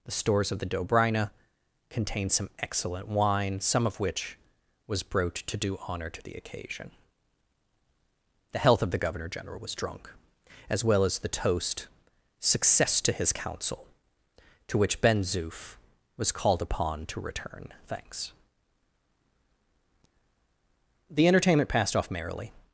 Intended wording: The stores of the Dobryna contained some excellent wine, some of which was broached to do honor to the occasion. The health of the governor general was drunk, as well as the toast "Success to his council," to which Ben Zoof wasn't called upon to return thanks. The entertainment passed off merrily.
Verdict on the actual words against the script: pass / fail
fail